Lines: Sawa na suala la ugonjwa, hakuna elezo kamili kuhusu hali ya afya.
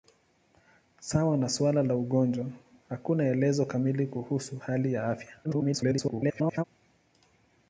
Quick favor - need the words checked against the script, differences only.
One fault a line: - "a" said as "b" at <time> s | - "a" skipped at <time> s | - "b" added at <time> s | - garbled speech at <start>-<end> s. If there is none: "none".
- garbled speech at 5.4-6.6 s